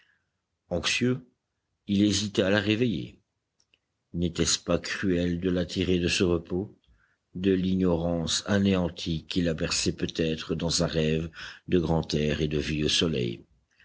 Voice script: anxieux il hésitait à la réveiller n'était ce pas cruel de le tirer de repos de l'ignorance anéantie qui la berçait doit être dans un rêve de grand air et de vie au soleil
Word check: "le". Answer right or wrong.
wrong